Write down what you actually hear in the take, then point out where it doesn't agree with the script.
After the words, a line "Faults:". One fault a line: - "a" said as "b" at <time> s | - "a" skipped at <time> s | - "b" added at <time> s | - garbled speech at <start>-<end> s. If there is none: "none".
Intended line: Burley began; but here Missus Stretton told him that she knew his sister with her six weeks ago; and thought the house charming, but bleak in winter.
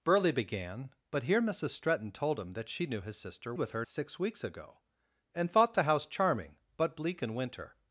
Burley began; but here Missus Stretton told him that she knew his sister with her six weeks ago; and thought the house charming, but bleak in winter.
Faults:
none